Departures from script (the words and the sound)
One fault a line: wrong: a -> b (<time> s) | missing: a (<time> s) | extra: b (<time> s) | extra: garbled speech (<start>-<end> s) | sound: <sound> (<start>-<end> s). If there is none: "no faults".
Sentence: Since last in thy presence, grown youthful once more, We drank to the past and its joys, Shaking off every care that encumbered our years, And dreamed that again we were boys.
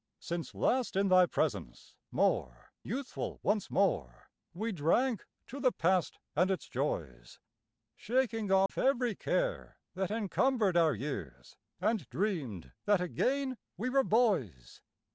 wrong: grown -> more (2.1 s)
sound: dropout (8.7-8.7 s)